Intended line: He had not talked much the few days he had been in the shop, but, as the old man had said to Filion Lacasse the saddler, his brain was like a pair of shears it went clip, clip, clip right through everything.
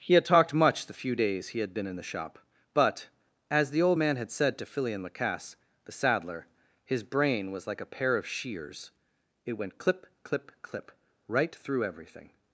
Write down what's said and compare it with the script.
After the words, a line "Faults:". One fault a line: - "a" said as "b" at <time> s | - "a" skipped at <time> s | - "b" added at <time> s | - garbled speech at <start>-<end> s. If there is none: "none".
He had talked much the few days he had been in the shop, but, as the old man had said to Filion Lacasse the saddler, his brain was like a pair of shears it went clip, clip, clip right through everything.
Faults:
- "not" skipped at 0.2 s